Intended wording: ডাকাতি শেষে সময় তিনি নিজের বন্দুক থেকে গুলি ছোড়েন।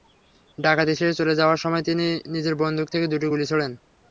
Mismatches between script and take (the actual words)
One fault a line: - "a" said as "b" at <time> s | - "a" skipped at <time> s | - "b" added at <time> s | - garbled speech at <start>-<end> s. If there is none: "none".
- "চলে যাওয়ার" added at 1.2 s
- "দুটি" added at 3.1 s